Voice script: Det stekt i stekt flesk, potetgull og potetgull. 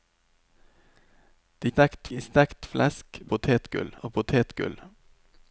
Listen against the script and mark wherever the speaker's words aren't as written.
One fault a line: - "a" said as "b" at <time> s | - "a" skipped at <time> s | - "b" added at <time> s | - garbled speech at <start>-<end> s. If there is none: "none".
none